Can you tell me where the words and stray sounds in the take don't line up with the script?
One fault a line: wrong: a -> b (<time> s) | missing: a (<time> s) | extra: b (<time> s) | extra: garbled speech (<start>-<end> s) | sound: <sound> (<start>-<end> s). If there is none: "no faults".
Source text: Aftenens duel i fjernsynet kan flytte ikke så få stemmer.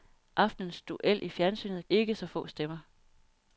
missing: kan flytte (1.9 s)